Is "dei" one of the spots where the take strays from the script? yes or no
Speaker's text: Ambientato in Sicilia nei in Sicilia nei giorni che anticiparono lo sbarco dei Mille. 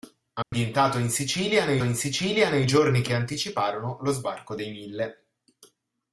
no